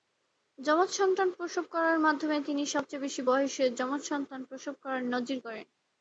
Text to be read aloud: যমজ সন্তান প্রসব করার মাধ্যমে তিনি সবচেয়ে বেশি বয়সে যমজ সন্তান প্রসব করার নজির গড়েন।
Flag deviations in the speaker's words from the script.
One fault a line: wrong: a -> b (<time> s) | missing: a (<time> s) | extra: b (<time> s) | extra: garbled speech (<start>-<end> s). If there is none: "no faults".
no faults